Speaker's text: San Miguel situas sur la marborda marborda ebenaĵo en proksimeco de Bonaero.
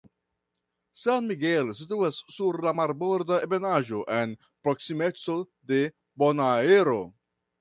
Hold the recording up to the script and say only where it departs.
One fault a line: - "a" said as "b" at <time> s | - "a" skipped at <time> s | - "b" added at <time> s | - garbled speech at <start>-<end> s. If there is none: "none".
- "marborda" skipped at 3.4 s